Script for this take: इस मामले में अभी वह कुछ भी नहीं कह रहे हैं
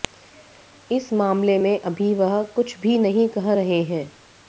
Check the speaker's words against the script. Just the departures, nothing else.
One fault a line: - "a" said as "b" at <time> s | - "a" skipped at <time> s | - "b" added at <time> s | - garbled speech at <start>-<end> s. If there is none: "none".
none